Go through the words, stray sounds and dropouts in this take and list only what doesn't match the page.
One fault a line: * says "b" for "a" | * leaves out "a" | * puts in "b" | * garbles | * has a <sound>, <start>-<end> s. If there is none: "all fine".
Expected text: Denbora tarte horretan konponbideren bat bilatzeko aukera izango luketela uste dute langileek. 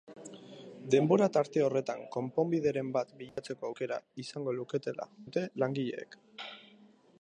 * has a dropout, 3.3-3.4 s
* leaves out "uste"